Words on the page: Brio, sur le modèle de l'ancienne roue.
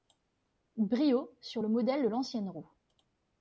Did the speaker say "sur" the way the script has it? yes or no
yes